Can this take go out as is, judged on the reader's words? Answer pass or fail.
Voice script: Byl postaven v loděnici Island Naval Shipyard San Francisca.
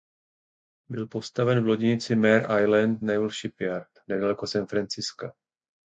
fail